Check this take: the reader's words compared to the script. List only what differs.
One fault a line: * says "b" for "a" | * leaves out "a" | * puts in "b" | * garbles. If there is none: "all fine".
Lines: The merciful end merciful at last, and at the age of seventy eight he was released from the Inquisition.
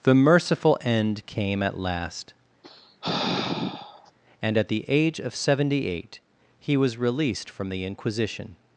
* says "came" for "merciful"